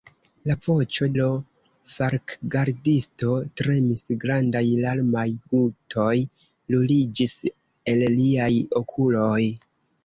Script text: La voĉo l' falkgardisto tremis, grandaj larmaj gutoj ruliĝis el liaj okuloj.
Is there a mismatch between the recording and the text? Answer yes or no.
no